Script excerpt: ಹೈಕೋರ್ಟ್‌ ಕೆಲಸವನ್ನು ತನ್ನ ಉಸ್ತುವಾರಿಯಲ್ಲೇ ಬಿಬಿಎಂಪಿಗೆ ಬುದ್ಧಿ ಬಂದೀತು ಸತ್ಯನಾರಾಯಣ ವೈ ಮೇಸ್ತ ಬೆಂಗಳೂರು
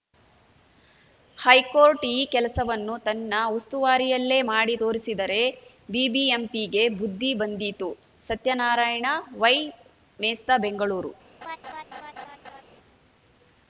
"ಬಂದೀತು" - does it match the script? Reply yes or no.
yes